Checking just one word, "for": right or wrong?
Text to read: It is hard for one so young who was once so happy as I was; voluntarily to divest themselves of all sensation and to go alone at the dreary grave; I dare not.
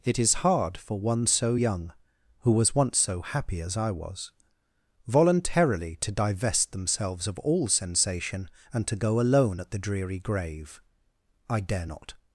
right